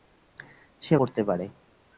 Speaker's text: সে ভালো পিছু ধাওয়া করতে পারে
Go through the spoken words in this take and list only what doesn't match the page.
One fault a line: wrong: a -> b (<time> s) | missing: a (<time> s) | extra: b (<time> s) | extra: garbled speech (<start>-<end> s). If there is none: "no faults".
missing: ভালো পিছু ধাওয়া (0.9 s)